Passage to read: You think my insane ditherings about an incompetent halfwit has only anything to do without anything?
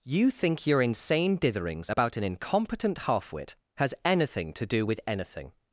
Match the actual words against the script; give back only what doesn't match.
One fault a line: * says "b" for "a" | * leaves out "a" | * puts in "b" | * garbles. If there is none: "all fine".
* says "your" for "my"
* leaves out "only"
* says "with" for "without"